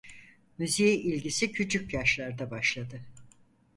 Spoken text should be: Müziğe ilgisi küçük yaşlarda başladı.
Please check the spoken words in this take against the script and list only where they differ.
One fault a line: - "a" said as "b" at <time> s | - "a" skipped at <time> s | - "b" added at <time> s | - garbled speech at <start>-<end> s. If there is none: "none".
none